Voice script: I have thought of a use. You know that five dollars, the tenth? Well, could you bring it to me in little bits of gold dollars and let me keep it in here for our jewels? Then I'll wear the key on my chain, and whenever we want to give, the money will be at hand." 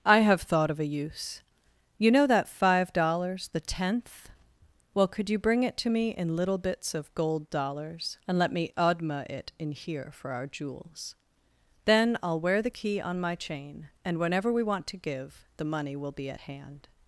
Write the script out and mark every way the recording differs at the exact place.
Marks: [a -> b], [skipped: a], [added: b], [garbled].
I have thought of a use. You know that five dollars, the tenth? Well, could you bring it to me in little bits of gold dollars and let me [keep -> odma] it in here for our jewels? Then I'll wear the key on my chain, and whenever we want to give, the money will be at hand."